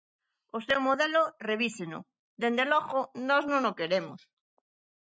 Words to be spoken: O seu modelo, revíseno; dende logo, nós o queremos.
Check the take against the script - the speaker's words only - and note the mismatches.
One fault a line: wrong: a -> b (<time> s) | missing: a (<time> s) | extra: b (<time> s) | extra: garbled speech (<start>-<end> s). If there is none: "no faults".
extra: non (3.5 s)